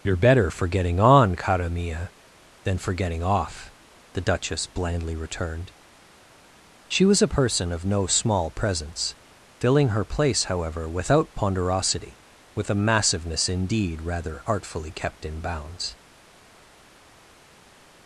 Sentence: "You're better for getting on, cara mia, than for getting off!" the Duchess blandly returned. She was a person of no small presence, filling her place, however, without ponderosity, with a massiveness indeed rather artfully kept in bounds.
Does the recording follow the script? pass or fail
pass